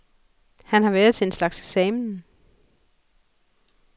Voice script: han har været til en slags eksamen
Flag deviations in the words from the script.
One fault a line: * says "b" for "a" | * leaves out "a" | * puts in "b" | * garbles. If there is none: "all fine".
all fine